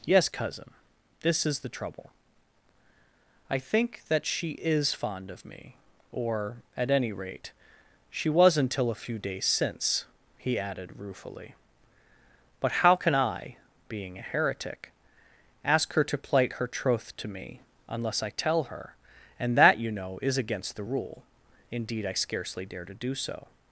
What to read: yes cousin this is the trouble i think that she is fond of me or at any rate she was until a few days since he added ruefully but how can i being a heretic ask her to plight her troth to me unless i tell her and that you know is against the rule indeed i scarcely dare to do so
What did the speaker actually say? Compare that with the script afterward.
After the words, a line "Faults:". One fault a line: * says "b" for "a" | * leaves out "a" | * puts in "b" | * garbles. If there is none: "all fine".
yes cousin this is the trouble i think that she is fond of me or at any rate she was until a few days since he added ruefully but how can i being a heretic ask her to plight her troth to me unless i tell her and that you know is against the rule indeed i scarcely dare to do so
Faults:
all fine